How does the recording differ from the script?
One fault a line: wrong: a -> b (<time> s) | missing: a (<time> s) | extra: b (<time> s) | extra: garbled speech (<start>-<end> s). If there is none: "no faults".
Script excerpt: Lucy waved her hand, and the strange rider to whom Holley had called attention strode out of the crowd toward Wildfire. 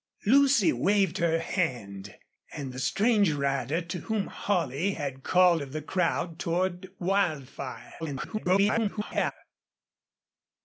missing: attention strode out (5.6 s)
extra: garbled speech (8.0-9.3 s)